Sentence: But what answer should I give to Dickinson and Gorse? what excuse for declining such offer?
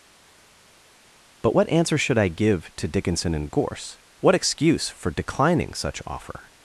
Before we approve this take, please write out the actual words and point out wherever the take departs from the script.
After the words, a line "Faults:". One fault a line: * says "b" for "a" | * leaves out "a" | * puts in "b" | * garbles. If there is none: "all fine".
But what answer should I give to Dickinson and Gorse? what excuse for declining such offer?
Faults:
all fine